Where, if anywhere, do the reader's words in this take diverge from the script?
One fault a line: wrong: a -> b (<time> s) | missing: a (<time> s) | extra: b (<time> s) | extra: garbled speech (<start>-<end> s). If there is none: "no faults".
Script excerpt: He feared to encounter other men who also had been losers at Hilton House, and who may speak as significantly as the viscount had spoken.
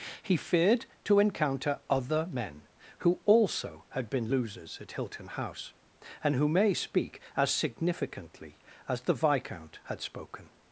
no faults